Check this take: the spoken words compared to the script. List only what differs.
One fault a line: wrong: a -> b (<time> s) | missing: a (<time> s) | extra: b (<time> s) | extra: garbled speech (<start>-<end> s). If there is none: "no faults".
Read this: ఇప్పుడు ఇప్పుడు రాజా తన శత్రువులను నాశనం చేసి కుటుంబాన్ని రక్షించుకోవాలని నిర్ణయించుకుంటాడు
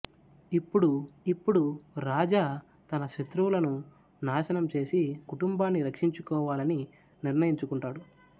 no faults